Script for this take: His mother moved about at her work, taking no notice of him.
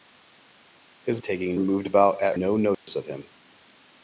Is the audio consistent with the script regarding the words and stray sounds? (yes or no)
no